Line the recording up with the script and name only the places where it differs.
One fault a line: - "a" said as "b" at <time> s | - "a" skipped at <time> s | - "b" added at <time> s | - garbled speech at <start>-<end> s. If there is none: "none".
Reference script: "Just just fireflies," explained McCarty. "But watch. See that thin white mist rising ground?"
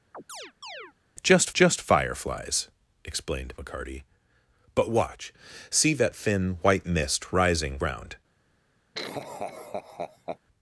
none